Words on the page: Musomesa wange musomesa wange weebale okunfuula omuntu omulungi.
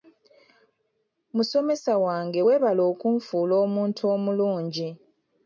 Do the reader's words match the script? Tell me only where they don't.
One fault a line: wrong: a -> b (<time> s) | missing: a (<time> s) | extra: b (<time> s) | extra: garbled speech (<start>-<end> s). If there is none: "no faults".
missing: musomesa wange (2.4 s)